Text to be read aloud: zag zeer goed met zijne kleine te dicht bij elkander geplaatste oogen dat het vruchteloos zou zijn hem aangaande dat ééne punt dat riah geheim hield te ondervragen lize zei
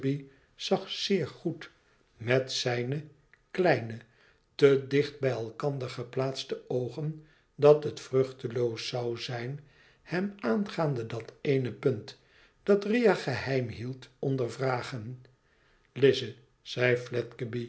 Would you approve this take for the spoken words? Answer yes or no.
no